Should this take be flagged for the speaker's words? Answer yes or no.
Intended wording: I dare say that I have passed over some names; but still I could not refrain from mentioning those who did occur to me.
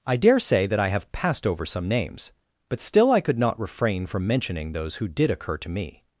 no